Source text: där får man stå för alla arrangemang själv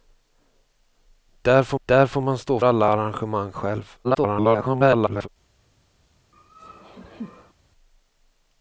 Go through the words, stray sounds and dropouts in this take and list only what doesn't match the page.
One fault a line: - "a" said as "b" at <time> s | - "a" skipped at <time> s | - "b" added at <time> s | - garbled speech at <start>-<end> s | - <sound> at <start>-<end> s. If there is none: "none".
- "där får" added at 1.8 s
- "för" skipped at 2.6 s
- garbled speech at 4.0-5.3 s
- laugh at 6.3-7.5 s